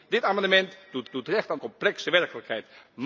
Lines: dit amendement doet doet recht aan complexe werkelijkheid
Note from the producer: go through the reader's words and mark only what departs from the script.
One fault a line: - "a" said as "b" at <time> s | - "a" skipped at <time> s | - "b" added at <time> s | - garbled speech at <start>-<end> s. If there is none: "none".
none